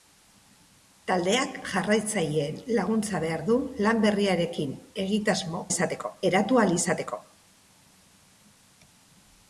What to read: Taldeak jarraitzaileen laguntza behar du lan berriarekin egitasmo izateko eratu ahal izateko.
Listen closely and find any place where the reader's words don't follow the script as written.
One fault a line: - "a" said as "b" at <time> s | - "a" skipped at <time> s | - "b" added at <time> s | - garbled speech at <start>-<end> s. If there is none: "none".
none